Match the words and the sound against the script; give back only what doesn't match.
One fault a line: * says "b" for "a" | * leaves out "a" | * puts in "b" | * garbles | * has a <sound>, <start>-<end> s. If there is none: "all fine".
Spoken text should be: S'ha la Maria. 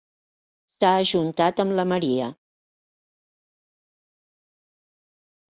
* puts in "ajuntat amb"